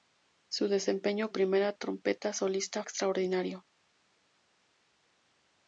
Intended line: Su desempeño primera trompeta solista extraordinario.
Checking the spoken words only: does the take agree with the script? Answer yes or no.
yes